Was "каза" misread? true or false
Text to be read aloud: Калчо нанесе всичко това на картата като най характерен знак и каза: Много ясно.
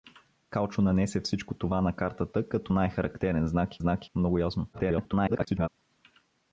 true